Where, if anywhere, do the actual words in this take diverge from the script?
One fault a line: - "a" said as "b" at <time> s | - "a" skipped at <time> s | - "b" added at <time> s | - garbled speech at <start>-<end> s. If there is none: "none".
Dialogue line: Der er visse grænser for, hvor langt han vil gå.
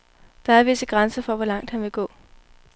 none